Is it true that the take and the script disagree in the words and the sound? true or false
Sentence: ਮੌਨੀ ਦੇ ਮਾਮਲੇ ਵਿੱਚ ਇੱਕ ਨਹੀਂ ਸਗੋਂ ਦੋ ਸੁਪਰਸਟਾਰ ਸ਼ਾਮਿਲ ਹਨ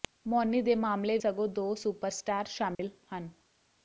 true